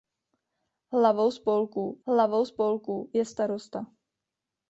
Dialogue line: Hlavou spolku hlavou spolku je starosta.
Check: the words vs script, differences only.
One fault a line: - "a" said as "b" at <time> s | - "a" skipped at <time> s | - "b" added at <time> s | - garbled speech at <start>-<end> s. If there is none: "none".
none